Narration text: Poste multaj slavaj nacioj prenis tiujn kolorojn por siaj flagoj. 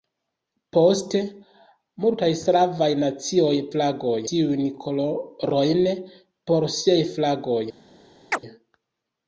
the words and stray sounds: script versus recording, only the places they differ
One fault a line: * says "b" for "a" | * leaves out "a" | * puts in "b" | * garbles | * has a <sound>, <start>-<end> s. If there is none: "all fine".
* says "flagoj" for "prenis"
* has a chirp, 8.3-8.4 s